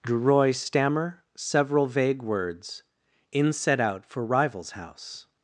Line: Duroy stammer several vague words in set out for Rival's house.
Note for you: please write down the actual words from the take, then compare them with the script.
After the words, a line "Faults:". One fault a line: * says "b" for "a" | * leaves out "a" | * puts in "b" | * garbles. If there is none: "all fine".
Duroy stammer several vague words in set out for Rival's house.
Faults:
all fine